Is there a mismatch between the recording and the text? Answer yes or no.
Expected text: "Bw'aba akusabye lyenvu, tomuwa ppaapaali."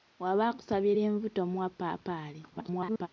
yes